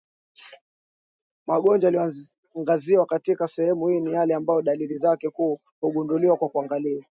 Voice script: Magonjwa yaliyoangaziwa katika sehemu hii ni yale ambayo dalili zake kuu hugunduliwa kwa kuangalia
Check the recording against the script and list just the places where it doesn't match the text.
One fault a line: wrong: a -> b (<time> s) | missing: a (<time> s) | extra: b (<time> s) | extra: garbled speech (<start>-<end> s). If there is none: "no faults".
no faults